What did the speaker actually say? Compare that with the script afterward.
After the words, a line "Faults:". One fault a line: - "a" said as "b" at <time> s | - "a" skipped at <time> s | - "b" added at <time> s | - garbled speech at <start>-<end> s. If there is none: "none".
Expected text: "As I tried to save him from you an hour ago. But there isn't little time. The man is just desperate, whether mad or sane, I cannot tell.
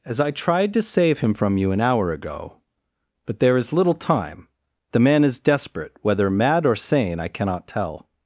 "As I tried to save him from you an hour ago. But there is little time. The man is desperate, whether mad or sane, I cannot tell.
Faults:
- "isn't" said as "is" at 3.5 s
- "just" skipped at 5.4 s